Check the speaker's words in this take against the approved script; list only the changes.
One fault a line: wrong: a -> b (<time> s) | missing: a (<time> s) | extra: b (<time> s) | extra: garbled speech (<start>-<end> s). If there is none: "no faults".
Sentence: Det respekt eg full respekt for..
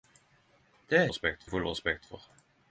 no faults